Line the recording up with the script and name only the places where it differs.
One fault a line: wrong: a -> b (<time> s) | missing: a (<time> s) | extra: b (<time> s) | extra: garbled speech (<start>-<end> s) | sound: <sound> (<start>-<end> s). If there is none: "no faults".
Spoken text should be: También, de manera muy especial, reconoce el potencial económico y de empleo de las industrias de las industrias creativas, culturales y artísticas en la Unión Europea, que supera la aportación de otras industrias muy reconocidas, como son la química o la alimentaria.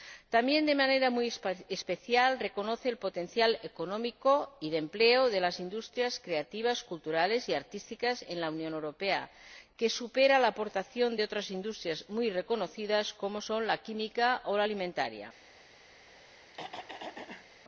missing: de las industrias (6.2 s)
sound: throat clearing (16.1-17.5 s)